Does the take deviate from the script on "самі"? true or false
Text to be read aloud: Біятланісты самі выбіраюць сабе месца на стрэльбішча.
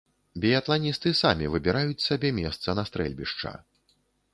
false